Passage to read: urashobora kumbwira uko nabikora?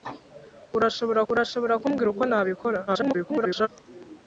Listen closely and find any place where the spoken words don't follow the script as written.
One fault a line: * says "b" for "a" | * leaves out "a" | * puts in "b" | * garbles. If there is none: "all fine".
* puts in "urashobora"
* garbles